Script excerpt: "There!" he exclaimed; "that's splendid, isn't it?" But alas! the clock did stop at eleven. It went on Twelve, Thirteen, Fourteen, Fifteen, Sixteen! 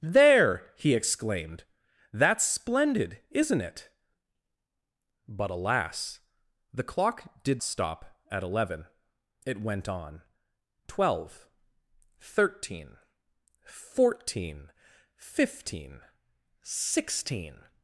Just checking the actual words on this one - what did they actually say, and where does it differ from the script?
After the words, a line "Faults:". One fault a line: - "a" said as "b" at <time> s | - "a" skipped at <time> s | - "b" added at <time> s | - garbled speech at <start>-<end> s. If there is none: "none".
"There!" he exclaimed; "that's splendid, isn't it?" But alas! the clock did stop at eleven. It went on Twelve, Thirteen, Fourteen, Fifteen, Sixteen!
Faults:
none